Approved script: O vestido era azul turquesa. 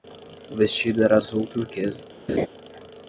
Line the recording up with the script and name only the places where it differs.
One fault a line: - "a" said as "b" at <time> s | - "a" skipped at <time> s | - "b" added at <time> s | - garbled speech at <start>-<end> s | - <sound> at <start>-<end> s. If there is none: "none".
- laugh at 2.3-2.5 s